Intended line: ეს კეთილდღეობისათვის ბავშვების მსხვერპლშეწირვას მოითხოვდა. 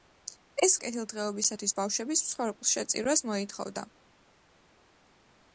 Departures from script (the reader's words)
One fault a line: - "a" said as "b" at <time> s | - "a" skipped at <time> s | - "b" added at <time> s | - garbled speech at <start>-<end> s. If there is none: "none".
none